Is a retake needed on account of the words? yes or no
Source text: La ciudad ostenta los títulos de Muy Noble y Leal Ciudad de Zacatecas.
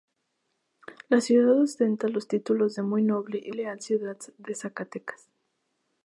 no